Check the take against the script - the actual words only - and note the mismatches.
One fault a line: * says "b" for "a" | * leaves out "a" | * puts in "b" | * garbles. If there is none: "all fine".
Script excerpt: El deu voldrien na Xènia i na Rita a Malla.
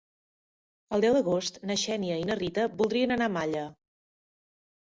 * says "d'agost" for "voldrien"
* puts in "voldrien anar"